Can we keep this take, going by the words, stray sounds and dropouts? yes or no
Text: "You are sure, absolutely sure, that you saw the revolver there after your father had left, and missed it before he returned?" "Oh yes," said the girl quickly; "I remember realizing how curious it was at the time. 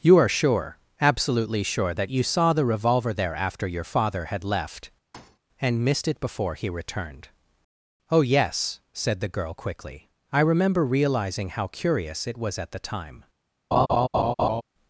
no